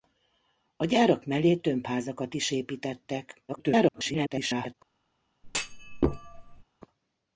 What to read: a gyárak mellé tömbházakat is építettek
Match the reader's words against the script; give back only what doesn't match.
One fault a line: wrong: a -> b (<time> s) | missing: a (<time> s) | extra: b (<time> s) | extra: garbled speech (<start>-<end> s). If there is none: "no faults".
extra: garbled speech (3.5-4.7 s)